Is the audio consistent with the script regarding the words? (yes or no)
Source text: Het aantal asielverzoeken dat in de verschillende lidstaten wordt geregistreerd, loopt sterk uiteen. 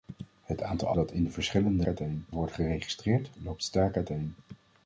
no